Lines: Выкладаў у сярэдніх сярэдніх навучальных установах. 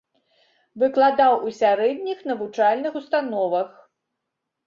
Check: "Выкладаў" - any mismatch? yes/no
no